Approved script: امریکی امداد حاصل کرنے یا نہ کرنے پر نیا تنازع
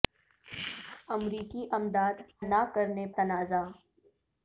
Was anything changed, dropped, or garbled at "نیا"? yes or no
yes